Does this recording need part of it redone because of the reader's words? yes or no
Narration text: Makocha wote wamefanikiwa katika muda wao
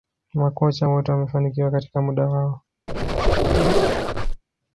no